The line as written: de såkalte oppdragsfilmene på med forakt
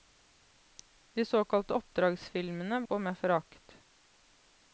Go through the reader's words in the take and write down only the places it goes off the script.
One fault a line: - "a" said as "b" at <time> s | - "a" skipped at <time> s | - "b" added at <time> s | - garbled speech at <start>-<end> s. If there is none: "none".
none